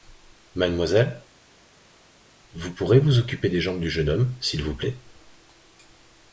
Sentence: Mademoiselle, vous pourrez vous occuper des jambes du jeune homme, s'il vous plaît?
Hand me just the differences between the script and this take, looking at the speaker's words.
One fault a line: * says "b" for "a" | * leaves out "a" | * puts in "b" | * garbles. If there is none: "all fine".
all fine